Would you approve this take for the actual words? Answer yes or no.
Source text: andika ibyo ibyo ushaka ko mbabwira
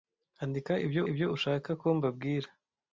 yes